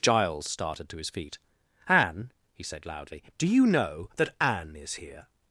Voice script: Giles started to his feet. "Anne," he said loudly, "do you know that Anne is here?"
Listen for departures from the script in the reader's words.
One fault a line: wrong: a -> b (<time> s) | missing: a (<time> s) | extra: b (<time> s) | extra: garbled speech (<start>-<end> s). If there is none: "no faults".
no faults